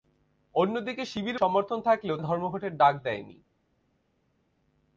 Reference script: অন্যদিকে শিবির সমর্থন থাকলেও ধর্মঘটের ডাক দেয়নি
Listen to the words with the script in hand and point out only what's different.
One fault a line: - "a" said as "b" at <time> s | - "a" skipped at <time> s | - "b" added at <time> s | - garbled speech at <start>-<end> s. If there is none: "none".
none